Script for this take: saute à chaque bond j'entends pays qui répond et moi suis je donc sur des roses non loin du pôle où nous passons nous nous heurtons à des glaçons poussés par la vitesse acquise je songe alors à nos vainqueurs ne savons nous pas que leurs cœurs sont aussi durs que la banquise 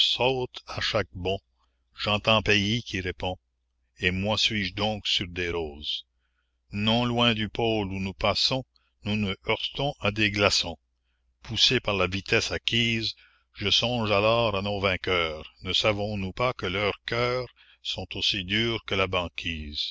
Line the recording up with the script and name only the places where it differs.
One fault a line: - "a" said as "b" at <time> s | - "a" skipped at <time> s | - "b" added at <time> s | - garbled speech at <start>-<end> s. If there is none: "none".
none